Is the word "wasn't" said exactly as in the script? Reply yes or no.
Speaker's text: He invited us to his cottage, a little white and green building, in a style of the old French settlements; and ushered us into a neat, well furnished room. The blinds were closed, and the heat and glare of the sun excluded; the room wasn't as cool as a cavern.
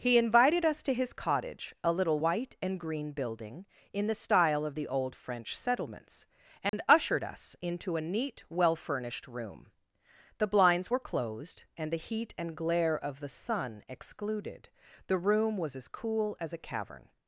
no